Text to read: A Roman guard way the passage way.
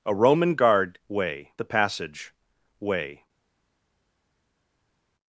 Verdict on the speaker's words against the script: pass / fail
pass